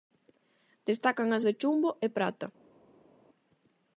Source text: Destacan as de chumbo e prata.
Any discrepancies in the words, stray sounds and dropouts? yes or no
no